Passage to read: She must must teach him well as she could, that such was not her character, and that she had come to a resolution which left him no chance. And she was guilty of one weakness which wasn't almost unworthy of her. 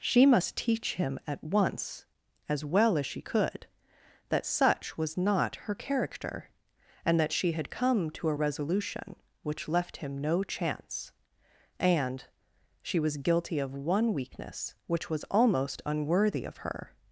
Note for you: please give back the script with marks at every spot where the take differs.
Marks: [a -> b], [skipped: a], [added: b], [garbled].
She must [skipped: must] teach him [added: at once as] well as she could, that such was not her character, and that she had come to a resolution which left him no chance. And she was guilty of one weakness which [wasn't -> was] almost unworthy of her.